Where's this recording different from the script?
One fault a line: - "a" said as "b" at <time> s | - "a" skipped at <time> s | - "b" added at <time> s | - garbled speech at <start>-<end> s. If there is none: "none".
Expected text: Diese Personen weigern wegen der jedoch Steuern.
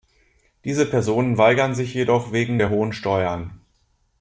- "sich jedoch" added at 1.8 s
- "jedoch" said as "hohen" at 2.7 s